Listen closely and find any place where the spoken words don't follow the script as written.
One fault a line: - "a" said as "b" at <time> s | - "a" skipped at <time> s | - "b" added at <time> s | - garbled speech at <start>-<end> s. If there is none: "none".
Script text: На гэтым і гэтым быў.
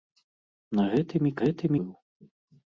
none